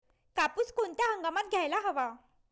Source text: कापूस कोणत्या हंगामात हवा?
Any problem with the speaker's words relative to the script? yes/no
yes